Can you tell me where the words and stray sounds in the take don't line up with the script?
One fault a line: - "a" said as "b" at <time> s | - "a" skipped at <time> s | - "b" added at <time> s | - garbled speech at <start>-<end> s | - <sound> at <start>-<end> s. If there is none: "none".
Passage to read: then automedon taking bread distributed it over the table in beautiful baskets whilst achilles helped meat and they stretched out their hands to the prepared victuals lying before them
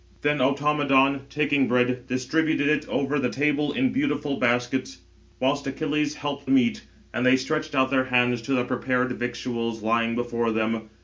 none